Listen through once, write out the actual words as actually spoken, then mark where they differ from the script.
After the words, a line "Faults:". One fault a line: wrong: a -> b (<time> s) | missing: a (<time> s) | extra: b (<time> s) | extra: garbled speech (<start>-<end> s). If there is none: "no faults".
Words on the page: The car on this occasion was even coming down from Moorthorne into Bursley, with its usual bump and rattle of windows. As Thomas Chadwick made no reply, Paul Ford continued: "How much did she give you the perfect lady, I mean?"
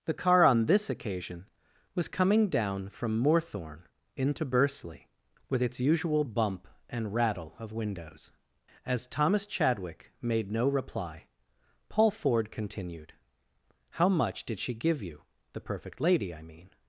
The car on this occasion was coming down from Moorthorne into Bursley, with its usual bump and rattle of windows. As Thomas Chadwick made no reply, Paul Ford continued: "How much did she give you the perfect lady, I mean?"
Faults:
missing: even (2.1 s)